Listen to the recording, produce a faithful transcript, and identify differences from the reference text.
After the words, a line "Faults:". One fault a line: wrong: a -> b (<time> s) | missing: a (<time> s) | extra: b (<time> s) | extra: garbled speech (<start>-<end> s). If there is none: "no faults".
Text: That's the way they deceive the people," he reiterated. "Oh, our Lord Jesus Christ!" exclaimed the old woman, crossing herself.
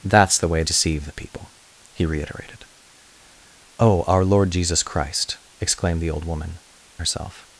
That's the way deceive the people," he reiterated. "Oh, our Lord Jesus Christ!" exclaimed the old woman, herself.
Faults:
missing: they (0.6 s)
missing: crossing (6.6 s)